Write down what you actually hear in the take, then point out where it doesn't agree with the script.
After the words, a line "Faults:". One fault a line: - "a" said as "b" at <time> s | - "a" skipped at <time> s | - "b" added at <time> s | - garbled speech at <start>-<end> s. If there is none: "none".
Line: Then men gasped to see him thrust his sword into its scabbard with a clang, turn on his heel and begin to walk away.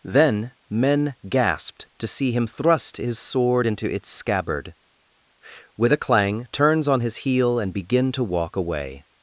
Then men gasped to see him thrust his sword into its scabbard with a clang, turns on his heel and begin to walk away.
Faults:
- "turn" said as "turns" at 6.5 s